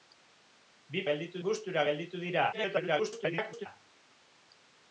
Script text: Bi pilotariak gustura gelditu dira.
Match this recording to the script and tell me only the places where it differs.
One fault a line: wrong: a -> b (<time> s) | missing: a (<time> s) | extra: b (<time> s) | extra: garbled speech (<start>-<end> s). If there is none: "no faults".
wrong: pilotariak -> gelditu (1.1 s)
extra: garbled speech (2.5-3.7 s)